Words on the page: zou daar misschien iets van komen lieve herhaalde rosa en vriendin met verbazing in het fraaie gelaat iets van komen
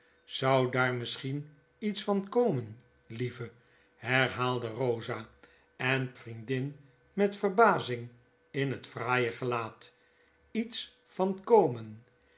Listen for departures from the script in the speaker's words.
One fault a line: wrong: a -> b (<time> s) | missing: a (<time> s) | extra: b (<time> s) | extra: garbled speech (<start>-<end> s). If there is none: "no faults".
no faults